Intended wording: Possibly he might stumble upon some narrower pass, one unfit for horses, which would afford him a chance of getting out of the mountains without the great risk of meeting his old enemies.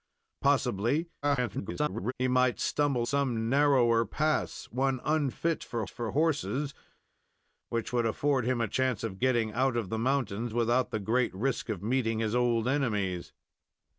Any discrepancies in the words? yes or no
yes